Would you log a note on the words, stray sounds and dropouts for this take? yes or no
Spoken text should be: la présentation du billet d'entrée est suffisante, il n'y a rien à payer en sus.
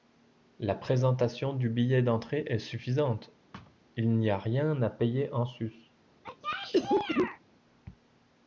yes